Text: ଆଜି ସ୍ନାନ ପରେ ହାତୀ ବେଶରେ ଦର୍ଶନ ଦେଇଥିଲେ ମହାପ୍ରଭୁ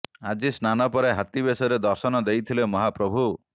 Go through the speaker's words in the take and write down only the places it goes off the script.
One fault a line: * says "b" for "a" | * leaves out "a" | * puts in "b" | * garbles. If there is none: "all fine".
all fine